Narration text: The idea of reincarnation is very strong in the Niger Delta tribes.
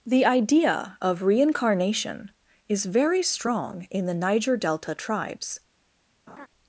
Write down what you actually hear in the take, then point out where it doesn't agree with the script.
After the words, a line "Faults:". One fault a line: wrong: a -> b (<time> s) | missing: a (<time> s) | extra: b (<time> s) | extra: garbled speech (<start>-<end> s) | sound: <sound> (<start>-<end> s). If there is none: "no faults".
The idea of reincarnation is very strong in the Niger Delta tribes.
Faults:
sound: laugh (6.3-6.5 s)